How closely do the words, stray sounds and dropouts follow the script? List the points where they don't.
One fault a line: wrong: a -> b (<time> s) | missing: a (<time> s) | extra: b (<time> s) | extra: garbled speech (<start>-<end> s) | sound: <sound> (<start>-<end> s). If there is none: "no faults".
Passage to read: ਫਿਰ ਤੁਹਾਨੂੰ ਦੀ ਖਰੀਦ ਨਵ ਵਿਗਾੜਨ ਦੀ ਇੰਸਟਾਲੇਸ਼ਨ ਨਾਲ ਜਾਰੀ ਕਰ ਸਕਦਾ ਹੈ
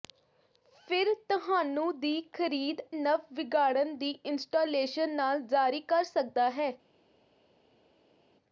no faults